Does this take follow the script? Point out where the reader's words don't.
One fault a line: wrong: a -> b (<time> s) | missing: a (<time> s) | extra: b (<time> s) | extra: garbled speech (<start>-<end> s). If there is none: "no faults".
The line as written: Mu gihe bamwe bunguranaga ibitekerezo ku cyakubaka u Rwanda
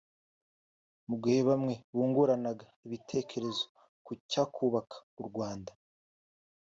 no faults